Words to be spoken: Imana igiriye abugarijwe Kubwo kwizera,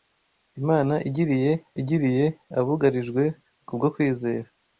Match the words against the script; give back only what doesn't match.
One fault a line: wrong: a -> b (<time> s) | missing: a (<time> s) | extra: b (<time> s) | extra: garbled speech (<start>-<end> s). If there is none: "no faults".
extra: igiriye (1.8 s)